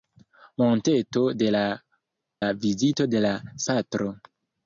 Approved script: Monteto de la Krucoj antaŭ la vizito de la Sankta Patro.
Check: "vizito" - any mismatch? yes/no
no